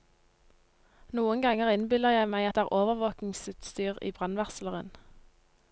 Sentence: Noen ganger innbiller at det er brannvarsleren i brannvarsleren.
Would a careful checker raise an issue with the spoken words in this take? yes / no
yes